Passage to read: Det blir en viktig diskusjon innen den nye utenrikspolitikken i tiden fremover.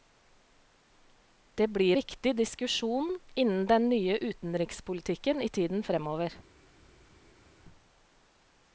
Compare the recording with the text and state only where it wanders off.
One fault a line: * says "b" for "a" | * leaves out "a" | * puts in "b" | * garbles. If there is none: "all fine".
* leaves out "en"